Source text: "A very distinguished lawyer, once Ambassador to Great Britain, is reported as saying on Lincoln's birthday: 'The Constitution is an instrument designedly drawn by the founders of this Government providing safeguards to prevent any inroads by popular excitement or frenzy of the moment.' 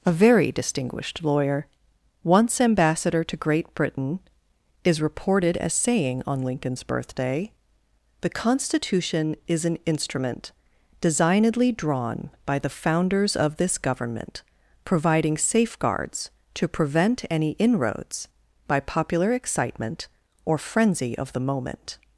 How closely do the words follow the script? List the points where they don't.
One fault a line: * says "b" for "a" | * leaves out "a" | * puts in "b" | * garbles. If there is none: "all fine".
all fine